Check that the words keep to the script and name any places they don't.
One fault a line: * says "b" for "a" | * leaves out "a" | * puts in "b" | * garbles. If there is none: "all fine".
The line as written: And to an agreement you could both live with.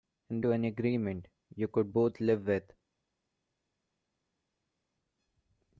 all fine